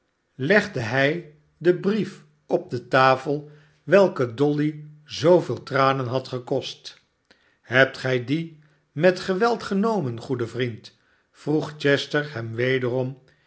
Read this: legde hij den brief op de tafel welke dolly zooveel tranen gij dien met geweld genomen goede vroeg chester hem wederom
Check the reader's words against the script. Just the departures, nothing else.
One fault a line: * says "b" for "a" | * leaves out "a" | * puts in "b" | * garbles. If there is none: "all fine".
* puts in "had gekost hebt"
* puts in "vriend"